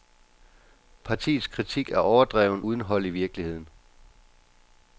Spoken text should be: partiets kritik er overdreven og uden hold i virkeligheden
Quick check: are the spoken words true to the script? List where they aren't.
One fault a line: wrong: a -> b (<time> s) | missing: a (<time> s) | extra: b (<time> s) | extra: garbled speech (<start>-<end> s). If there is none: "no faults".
missing: og (2.6 s)